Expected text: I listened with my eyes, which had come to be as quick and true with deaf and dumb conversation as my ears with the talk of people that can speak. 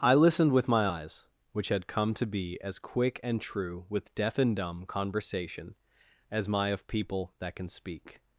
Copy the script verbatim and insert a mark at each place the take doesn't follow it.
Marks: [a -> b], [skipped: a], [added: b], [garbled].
I listened with my eyes, which had come to be as quick and true with deaf and dumb conversation as my [skipped: ears with the talk] of people that can speak.